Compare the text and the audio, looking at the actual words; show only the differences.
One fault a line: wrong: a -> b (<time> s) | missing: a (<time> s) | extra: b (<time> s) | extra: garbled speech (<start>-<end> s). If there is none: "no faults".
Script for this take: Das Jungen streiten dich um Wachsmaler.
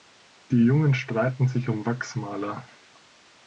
wrong: Das -> Die (0.5 s)
wrong: dich -> sich (1.5 s)